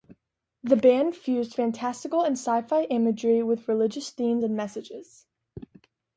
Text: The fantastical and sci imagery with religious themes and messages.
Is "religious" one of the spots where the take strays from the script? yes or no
no